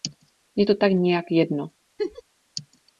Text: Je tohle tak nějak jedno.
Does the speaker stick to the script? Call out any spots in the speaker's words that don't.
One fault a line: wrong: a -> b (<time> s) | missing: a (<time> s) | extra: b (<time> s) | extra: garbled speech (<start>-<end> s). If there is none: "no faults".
wrong: tohle -> to (0.6 s)